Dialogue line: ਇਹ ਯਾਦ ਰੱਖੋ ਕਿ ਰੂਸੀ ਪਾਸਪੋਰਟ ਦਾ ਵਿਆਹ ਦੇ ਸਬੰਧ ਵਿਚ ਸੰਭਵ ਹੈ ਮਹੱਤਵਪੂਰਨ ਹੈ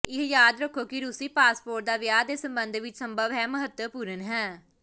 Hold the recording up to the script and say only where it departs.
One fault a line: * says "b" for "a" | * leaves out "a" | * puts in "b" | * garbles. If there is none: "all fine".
all fine